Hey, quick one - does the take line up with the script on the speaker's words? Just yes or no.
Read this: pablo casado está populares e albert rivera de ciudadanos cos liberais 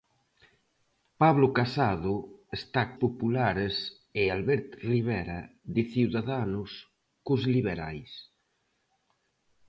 yes